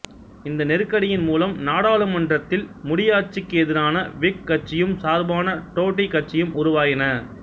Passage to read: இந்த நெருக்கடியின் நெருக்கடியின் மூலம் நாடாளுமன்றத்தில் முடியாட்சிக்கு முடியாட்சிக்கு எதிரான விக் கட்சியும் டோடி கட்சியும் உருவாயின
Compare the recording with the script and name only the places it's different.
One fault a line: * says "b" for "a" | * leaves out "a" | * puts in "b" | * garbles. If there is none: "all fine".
* leaves out "நெருக்கடியின்"
* leaves out "முடியாட்சிக்கு"
* puts in "சார்பான"